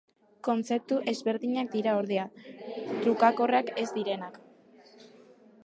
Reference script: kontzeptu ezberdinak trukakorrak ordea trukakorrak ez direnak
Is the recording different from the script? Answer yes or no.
yes